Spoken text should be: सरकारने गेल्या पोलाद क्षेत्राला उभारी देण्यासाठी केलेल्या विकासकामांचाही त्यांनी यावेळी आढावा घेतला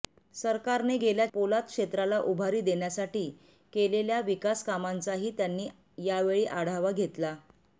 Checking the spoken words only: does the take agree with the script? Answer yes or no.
yes